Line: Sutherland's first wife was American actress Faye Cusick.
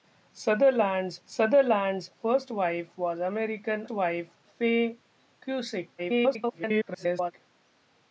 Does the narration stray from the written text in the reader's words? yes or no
yes